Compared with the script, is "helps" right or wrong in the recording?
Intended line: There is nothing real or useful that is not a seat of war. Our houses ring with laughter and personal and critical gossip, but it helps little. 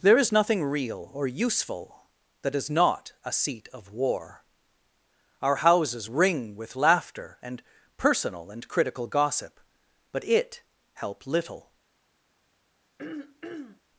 wrong